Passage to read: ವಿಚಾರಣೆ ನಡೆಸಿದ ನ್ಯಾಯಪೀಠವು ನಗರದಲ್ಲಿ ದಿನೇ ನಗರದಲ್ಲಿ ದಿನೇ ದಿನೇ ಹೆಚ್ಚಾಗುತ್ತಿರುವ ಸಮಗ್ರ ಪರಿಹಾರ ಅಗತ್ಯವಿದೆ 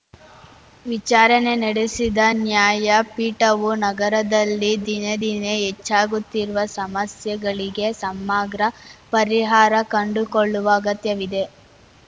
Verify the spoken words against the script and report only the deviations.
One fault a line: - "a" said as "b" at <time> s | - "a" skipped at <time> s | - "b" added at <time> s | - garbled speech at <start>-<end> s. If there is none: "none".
- "ನಗರದಲ್ಲಿ" skipped at 5.1 s
- "ದಿನೇ ಹೆಚ್ಚಾಗುತ್ತಿರುವ" said as "ಹೆಚ್ಚಾಗುತ್ತಿರುವ ಸಮಸ್ಯೆಗಳಿಗೆ" at 5.6 s
- "ಕಂಡುಕೊಳ್ಳುವ" added at 10.0 s